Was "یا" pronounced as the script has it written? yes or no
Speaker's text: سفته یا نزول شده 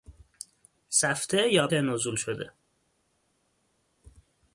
yes